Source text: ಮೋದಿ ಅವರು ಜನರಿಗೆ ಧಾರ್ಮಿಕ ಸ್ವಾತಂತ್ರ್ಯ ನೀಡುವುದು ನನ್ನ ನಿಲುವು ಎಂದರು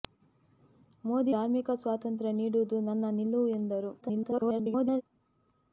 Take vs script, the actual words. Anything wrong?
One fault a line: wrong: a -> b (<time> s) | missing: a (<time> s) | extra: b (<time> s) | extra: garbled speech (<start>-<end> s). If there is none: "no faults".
missing: ಅವರು ಜನರಿಗೆ (1.3 s)
extra: garbled speech (4.0-5.0 s)